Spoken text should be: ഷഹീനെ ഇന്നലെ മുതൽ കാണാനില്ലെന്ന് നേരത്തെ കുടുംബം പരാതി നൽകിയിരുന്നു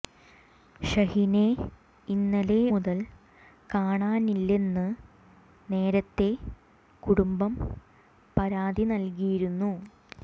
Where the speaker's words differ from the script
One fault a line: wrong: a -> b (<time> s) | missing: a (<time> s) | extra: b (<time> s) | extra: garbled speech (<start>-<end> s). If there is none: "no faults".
no faults